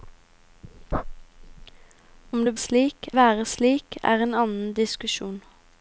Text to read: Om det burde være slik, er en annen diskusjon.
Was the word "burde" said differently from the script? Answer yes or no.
yes